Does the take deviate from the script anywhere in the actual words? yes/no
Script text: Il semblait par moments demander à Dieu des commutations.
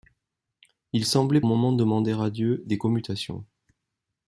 yes